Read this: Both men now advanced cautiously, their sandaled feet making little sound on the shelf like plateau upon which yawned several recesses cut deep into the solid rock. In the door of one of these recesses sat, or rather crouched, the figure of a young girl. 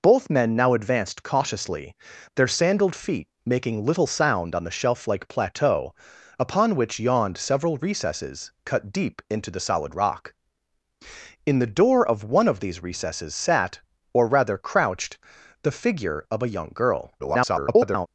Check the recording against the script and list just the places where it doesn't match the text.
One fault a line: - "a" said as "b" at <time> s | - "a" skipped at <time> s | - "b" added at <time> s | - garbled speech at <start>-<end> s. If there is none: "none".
- garbled speech at 17.2-18.1 s